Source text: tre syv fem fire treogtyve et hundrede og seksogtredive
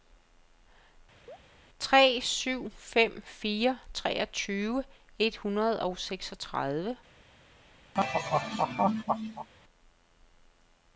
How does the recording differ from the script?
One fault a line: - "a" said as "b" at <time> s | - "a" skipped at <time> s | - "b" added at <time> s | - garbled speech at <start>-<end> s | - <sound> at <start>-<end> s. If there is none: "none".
- chirp at 1.3-1.4 s
- laugh at 7.9-9.5 s